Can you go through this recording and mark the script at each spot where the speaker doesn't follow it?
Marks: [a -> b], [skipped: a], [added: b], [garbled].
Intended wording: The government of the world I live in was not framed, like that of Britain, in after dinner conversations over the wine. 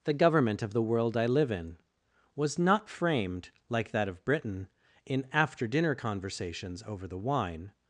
The government of the world I live in was not framed, like that of Britain, in after dinner conversations over the wine.